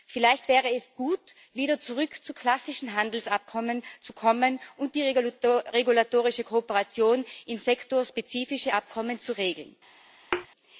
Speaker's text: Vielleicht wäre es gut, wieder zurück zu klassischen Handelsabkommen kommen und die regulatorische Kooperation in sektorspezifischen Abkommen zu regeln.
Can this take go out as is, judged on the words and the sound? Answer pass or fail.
fail